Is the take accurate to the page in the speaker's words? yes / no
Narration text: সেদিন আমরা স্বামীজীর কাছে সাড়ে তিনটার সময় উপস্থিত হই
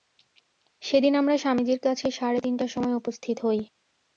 yes